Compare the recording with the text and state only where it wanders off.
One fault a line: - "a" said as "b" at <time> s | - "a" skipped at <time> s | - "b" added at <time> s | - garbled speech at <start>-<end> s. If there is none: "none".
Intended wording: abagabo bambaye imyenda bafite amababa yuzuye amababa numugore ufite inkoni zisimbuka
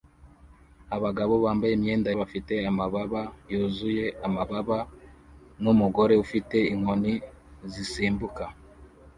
none